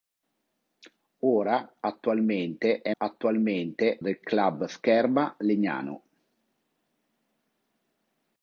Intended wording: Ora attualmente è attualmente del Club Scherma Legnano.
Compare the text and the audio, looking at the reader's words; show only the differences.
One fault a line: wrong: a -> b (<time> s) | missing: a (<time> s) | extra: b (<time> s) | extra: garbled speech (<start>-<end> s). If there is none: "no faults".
no faults